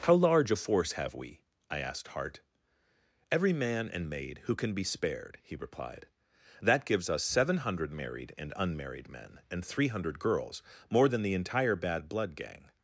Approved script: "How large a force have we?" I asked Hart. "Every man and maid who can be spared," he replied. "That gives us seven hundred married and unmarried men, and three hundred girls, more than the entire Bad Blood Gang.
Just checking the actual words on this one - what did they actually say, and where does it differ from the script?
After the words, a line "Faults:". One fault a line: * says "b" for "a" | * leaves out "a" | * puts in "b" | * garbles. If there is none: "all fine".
"How large a force have we?" I asked Hart. "Every man and maid who can be spared," he replied. "That gives us seven hundred married and unmarried men, and three hundred girls, more than the entire Bad Blood Gang.
Faults:
all fine